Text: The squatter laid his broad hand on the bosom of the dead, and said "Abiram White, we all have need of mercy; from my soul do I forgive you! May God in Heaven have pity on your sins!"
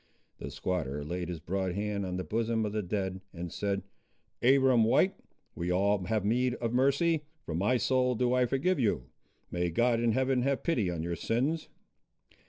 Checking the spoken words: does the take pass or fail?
pass